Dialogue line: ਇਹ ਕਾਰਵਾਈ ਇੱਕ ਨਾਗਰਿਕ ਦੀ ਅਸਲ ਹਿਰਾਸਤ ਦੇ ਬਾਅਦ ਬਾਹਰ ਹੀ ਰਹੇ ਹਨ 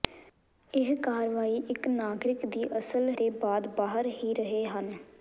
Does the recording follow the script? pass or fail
fail